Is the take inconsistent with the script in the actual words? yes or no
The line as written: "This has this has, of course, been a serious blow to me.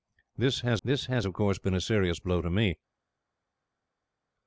no